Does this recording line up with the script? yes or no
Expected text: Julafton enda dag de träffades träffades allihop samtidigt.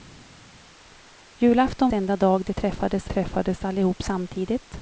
yes